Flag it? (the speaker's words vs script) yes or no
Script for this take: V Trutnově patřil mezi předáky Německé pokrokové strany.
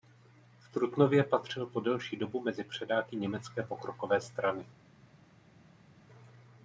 yes